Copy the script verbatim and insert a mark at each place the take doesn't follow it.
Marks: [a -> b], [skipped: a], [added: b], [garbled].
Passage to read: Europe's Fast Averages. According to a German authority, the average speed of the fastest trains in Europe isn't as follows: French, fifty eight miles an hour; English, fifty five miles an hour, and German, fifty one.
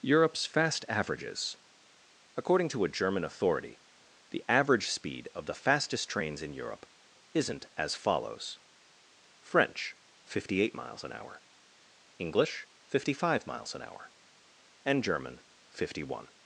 Europe's Fast Averages. According to a German authority, the average speed of the fastest trains in Europe isn't as follows: French, fifty eight miles an hour; English, fifty five miles an hour, and German, fifty one.